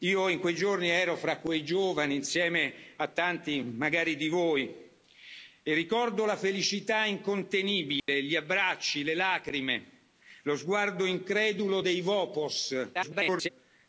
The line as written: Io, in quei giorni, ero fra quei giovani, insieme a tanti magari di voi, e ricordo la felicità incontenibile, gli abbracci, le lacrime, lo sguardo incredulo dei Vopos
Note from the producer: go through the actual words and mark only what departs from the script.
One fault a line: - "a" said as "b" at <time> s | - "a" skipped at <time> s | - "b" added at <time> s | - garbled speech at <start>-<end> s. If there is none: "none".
- garbled speech at 12.9-13.5 s